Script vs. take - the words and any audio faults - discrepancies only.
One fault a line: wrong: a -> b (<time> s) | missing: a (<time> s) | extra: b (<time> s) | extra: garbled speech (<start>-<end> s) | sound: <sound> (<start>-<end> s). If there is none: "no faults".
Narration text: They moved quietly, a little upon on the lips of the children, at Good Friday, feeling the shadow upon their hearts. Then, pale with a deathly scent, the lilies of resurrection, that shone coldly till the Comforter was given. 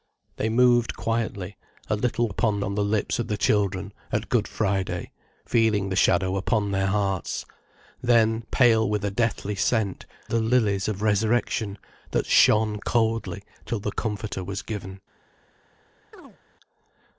sound: chirp (16.1-16.4 s)